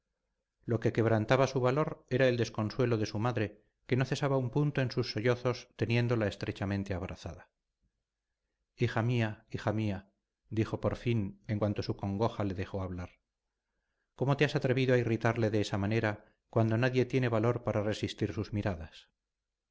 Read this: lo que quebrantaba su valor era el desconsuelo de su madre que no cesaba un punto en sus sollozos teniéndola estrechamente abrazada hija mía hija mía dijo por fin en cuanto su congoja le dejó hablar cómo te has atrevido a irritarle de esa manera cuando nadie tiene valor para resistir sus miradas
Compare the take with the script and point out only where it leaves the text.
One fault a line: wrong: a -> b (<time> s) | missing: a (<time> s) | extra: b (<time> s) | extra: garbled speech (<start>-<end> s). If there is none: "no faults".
no faults